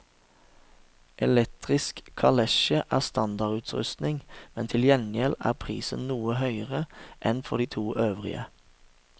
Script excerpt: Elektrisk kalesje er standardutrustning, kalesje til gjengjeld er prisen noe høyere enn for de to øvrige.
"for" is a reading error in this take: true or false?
false